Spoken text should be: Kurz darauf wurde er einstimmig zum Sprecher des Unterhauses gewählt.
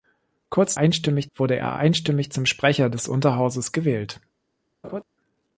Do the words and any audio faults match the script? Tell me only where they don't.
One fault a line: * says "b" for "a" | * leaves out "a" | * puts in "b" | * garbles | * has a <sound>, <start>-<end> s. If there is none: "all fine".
* says "einstimmig" for "darauf"
* has a laugh, 4.8-5.0 s